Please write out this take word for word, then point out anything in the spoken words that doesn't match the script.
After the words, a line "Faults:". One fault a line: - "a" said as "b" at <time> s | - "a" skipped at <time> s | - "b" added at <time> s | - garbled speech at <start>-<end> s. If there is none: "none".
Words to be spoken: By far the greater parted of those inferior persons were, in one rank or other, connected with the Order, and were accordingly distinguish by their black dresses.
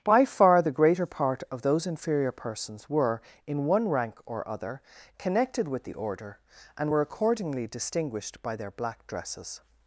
By far the greater part of those inferior persons were, in one rank or other, connected with the Order, and were accordingly distinguished by their black dresses.
Faults:
- "parted" said as "part" at 1.1 s
- "distinguish" said as "distinguished" at 7.7 s